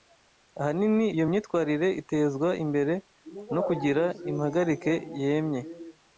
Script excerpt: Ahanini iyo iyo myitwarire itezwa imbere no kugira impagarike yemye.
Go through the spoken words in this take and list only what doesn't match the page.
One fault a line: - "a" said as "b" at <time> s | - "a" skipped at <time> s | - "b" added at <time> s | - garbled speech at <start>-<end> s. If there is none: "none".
- "iyo" skipped at 1.2 s